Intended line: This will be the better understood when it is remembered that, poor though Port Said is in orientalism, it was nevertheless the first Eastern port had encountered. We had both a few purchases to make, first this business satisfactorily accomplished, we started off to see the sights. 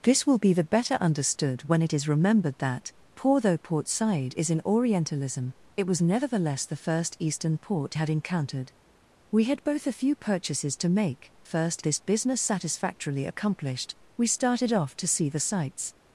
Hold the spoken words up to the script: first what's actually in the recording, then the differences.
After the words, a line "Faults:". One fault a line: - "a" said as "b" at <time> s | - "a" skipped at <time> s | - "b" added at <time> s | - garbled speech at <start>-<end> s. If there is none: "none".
This will be the better understood when it is remembered that, poor though Port Said is in orientalism, it was nevertheless the first Eastern port had encountered. We had both a few purchases to make, first this business satisfactorily accomplished, we started off to see the sights.
Faults:
none